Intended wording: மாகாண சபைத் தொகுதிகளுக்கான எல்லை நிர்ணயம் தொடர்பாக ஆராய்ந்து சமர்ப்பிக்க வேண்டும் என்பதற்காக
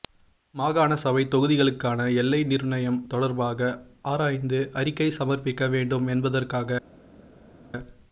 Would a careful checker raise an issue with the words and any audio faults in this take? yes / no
yes